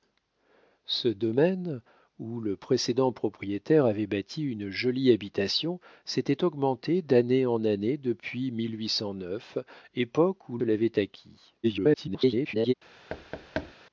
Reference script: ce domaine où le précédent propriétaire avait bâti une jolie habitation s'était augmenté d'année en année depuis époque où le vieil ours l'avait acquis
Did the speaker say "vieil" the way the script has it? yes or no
no